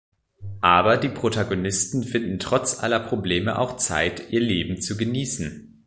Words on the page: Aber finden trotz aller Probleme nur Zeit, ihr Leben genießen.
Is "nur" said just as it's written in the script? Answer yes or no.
no